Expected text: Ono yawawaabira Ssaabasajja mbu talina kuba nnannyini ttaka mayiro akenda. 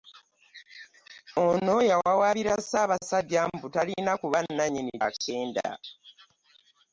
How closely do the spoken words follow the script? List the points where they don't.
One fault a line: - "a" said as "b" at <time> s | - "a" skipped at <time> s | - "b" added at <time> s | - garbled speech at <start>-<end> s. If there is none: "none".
- "ttaka mayiro" skipped at 4.9 s